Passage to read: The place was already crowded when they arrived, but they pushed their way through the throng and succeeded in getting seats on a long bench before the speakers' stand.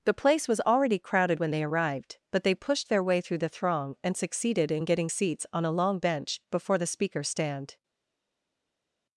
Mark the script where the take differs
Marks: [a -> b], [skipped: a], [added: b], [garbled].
The place was already crowded when they arrived, but they pushed their way through the throng and succeeded in getting seats on a long bench before the speakers' stand.